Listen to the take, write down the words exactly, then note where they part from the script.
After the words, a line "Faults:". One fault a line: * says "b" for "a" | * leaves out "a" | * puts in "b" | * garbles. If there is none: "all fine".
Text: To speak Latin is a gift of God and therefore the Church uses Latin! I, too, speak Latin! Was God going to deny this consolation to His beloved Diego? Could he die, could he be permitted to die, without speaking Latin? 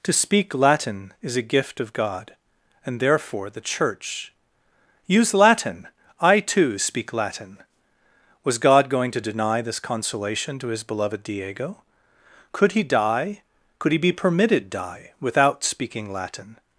To speak Latin is a gift of God and therefore the Church use Latin! I, too, speak Latin! Was God going to deny this consolation to His beloved Diego? Could he die, could he be permitted die, without speaking Latin?
Faults:
* says "use" for "uses"
* leaves out "to"